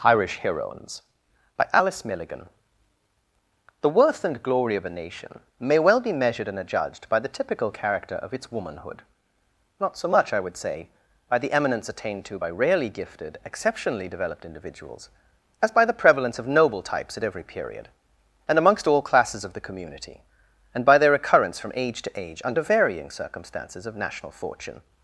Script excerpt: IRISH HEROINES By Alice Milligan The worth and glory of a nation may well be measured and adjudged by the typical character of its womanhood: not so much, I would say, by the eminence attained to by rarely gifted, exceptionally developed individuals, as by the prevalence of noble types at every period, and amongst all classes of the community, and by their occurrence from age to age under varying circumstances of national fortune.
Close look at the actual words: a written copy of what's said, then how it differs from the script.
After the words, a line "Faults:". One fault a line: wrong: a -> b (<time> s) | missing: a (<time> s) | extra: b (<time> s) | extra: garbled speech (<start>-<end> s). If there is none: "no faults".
IRISH HEROINES By Alice Milligan The worth and glory of a nation may well be measured and adjudged by the typical character of its womanhood: not so much, I would say, by the eminence attained to by rarely gifted, exceptionally developed individuals, as by the prevalence of noble types at every period, and amongst all classes of the community, and by their occurrence from age to age under varying circumstances of national fortune.
Faults:
no faults